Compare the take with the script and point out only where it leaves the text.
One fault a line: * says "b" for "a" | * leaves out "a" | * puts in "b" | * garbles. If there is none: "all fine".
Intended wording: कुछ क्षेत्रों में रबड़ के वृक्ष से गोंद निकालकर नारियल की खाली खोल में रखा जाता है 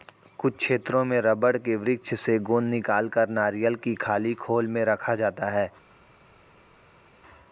all fine